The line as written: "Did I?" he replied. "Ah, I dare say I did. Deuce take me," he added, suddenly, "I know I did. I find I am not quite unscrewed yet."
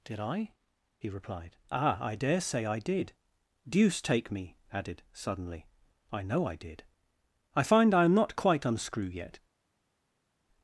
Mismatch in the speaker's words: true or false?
true